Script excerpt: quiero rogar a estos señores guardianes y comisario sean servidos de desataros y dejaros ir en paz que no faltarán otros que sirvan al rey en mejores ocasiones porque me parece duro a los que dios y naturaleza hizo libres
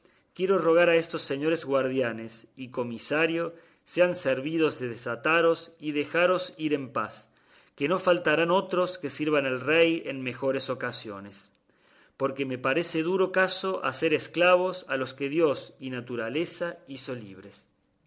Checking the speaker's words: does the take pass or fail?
fail